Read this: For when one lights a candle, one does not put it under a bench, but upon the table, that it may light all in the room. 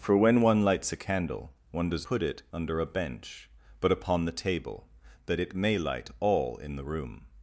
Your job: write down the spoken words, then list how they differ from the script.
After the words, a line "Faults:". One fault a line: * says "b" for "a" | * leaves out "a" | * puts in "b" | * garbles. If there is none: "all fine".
For when one lights a candle, one does put it under a bench, but upon the table, that it may light all in the room.
Faults:
* leaves out "not"